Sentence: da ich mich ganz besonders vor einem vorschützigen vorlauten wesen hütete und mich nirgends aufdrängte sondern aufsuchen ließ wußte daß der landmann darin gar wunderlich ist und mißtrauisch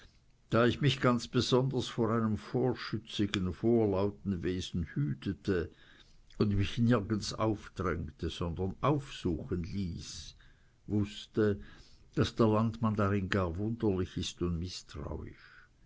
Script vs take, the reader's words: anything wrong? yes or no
no